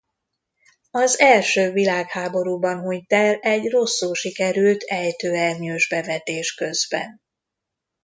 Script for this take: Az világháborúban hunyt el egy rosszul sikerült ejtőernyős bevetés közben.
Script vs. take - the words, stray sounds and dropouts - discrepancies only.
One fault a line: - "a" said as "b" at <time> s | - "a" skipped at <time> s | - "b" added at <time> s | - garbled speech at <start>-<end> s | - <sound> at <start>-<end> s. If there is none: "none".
- "első" added at 1.2 s